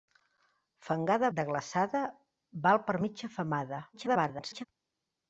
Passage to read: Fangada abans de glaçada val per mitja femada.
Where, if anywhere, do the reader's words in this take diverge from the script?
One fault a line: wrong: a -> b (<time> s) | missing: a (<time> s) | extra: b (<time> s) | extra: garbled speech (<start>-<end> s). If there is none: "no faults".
missing: abans (1.3 s)
extra: garbled speech (3.9-4.7 s)